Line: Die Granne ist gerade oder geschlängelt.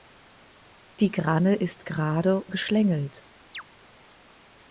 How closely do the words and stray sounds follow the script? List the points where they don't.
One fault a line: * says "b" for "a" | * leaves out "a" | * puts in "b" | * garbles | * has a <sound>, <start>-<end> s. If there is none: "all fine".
* leaves out "oder"
* has a chirp, 3.5-3.6 s